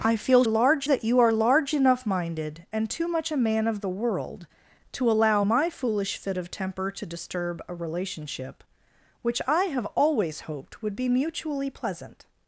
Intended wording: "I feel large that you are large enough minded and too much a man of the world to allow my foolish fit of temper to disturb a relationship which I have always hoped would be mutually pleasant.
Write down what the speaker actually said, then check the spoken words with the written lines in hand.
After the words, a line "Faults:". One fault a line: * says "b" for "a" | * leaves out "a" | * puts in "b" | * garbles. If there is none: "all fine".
"I feel large that you are large enough minded and too much a man of the world to allow my foolish fit of temper to disturb a relationship which I have always hoped would be mutually pleasant.
Faults:
all fine